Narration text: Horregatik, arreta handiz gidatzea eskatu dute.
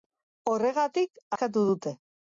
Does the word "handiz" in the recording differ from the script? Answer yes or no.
yes